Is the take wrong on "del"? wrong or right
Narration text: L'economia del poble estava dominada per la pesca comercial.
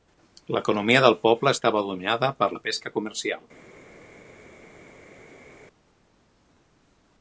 right